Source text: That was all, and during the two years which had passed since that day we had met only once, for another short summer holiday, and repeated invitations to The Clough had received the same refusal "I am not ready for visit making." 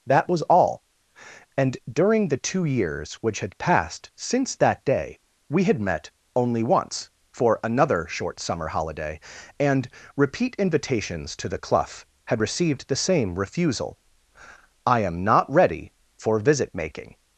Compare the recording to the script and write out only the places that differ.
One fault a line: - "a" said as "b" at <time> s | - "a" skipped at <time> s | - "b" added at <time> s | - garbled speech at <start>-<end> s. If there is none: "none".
- "repeated" said as "repeat" at 10.1 s